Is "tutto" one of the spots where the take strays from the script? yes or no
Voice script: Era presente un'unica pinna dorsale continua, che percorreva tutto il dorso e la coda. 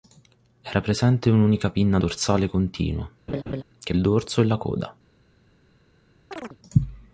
yes